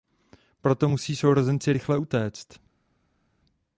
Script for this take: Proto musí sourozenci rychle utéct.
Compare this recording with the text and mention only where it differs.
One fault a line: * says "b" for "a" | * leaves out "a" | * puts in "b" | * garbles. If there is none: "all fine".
all fine